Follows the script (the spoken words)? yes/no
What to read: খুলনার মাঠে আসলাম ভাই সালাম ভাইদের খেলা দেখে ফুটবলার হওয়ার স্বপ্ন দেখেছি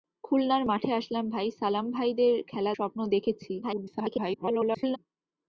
no